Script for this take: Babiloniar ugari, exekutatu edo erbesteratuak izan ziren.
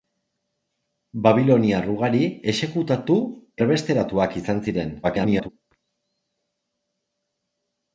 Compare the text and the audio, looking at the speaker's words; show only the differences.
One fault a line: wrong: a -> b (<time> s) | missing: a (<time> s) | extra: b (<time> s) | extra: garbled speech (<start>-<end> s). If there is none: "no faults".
missing: edo (3.2 s)
extra: garbled speech (5.0-5.5 s)